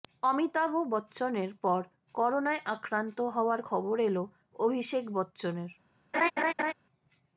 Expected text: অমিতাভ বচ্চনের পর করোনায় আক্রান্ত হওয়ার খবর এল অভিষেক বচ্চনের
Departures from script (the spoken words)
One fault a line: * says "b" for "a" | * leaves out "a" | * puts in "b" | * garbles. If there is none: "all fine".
all fine